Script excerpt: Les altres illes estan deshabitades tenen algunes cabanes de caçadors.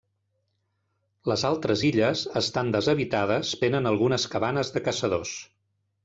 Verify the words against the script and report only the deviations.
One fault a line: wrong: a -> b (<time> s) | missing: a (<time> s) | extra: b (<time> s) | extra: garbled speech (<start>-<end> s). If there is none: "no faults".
no faults